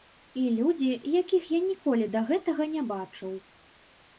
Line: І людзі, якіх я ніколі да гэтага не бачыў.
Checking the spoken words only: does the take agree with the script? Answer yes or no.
yes